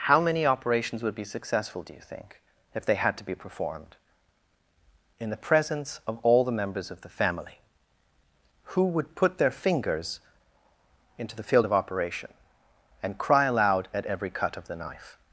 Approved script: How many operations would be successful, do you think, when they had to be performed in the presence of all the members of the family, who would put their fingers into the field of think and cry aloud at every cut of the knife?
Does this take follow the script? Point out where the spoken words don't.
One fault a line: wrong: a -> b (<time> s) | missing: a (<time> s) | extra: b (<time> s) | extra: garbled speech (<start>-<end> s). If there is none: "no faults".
wrong: when -> if (2.7 s)
wrong: think -> operation (11.7 s)